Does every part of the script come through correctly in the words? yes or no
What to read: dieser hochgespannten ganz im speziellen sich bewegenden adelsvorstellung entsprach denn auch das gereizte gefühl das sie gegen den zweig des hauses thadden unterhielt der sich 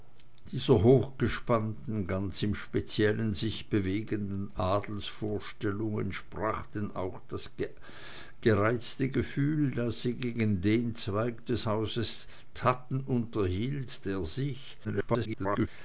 no